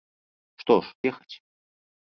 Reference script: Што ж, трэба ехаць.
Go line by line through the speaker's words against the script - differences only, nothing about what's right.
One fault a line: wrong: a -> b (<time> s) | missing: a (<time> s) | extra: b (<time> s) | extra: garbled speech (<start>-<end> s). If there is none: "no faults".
missing: трэба (0.9 s)